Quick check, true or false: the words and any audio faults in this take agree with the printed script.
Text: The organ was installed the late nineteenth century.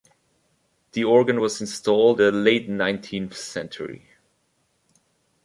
true